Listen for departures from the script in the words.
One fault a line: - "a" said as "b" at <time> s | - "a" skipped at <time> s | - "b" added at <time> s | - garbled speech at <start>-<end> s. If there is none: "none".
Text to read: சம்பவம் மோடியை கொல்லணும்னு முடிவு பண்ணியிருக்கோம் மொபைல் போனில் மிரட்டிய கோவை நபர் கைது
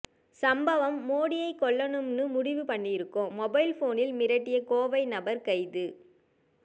none